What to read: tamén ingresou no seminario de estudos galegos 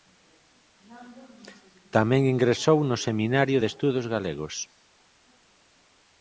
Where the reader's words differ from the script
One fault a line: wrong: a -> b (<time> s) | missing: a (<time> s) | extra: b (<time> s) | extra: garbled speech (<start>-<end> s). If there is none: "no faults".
no faults